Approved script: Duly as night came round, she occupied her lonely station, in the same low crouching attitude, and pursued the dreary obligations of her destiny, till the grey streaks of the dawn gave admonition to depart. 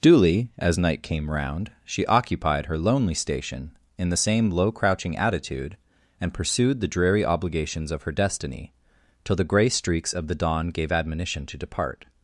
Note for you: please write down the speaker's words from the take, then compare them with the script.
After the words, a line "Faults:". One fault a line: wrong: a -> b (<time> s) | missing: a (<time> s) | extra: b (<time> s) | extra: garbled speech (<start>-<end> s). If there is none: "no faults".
Duly as night came round, she occupied her lonely station, in the same low crouching attitude, and pursued the dreary obligations of her destiny, till the grey streaks of the dawn gave admonition to depart.
Faults:
no faults